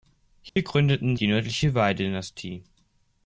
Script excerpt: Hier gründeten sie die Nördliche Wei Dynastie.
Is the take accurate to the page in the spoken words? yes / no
no